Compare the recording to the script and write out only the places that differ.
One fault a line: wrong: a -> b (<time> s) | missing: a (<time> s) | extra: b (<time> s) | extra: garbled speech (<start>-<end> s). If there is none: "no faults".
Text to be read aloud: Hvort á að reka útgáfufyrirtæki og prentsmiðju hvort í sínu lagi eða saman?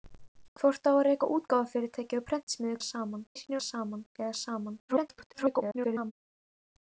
wrong: hvort -> saman (2.9 s)
wrong: lagi -> saman (3.7 s)
extra: garbled speech (4.9-6.1 s)